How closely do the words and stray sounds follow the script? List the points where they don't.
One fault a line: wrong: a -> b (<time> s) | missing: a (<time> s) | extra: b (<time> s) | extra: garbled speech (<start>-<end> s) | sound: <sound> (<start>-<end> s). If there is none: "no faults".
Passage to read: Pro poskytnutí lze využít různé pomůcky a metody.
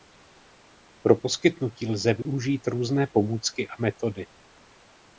sound: dropout (2.2-2.3 s)